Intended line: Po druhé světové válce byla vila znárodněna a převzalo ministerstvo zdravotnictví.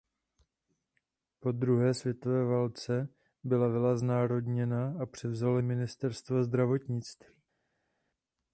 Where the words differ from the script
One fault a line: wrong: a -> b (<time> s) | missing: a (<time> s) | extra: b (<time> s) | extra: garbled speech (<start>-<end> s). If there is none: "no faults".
no faults